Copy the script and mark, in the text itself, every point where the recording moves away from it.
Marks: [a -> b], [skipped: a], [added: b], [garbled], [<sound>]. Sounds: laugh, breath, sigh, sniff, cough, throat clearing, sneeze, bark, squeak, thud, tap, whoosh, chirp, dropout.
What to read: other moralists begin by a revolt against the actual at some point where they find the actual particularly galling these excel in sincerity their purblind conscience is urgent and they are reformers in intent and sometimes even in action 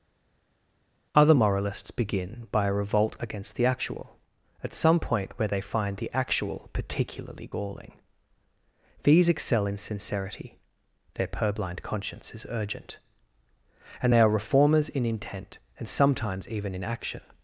other moralists begin by a revolt against the actual at some point where they find the actual particularly galling these excel in sincerity their purblind conscience is urgent and they are reformers in intent and sometimes even in action